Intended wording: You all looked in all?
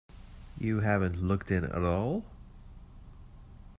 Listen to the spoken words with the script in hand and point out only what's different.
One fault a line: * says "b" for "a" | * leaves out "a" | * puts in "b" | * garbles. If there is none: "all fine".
* says "haven't" for "all"
* puts in "at"